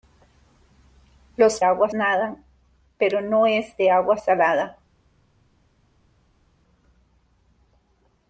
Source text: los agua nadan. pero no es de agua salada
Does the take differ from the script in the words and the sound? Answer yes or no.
no